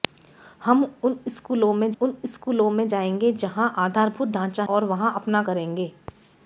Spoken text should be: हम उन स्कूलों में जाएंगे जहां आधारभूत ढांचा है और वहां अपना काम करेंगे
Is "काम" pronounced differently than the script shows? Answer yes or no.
yes